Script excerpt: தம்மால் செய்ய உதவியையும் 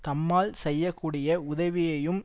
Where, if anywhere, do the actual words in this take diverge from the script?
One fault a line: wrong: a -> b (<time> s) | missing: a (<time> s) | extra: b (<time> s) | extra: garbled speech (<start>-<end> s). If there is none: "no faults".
extra: கூடிய (0.9 s)